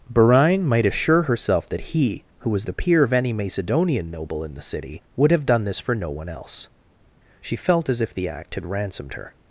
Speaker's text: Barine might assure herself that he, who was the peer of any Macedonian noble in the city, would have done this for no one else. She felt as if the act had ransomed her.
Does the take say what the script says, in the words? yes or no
yes